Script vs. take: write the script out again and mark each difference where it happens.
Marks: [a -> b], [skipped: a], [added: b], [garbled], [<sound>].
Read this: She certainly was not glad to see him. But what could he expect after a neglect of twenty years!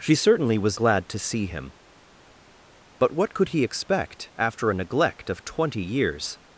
She certainly was [skipped: not] glad to see him. But what could he expect after a neglect of twenty years!